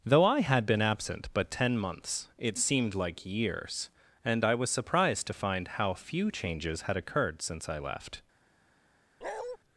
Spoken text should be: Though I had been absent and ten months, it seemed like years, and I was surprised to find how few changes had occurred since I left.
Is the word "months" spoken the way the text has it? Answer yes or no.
yes